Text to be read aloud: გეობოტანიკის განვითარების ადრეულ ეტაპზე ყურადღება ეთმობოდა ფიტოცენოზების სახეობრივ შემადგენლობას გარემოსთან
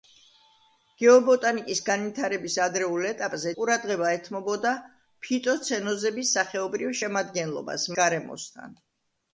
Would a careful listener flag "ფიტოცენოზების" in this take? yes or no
no